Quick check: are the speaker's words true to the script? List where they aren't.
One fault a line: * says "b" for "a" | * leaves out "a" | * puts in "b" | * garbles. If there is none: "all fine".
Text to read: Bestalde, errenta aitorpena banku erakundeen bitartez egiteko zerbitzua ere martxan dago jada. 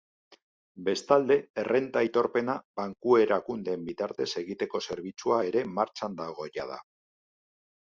all fine